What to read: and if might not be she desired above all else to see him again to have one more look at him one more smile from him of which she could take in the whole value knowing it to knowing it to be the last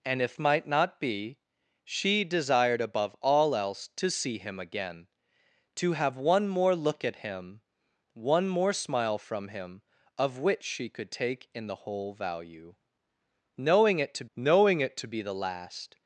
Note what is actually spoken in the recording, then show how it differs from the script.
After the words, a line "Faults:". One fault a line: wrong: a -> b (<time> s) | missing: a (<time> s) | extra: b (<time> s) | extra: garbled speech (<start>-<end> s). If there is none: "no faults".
and if might not be she desired above all else to see him again to have one more look at him one more smile from him of which she could take in the whole value knowing it to knowing it to be the last
Faults:
no faults